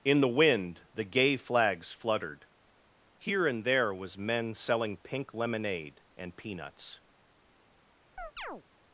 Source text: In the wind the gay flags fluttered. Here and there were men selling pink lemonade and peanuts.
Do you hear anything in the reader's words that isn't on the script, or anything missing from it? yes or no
yes